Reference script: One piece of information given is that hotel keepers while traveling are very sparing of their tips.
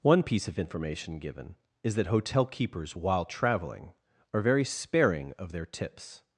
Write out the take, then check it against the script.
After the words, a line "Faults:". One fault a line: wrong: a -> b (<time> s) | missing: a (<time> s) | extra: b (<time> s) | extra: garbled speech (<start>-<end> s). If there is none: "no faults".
One piece of information given is that hotel keepers while traveling are very sparing of their tips.
Faults:
no faults